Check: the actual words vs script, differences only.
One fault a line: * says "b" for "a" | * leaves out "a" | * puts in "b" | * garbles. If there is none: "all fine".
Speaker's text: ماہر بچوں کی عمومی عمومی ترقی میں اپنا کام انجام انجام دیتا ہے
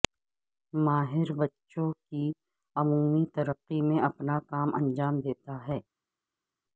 * leaves out "عمومی"
* leaves out "انجام"